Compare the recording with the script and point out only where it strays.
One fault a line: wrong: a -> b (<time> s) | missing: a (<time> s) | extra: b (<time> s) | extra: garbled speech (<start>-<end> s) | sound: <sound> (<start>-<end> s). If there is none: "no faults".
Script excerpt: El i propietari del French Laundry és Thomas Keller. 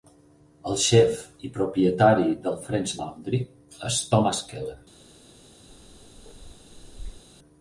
extra: xef (0.8 s)
sound: bark (5.7-7.2 s)